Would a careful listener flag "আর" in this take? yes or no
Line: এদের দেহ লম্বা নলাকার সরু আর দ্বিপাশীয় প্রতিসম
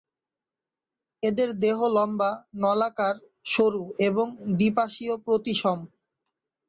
yes